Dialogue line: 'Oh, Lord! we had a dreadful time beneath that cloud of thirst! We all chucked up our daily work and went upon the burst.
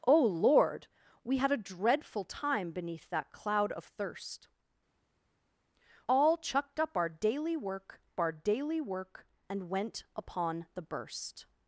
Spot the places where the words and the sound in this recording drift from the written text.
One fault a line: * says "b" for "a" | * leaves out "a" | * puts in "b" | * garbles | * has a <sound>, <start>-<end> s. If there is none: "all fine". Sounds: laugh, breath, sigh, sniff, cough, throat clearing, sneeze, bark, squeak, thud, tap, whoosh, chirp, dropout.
* leaves out "We"
* puts in "our daily work"